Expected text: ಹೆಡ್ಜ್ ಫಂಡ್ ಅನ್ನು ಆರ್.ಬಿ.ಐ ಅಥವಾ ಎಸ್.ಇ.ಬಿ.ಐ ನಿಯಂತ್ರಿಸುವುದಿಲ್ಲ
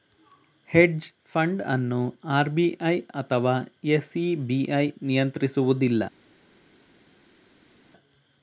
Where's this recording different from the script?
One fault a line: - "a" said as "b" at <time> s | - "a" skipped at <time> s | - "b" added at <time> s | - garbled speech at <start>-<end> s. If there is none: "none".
none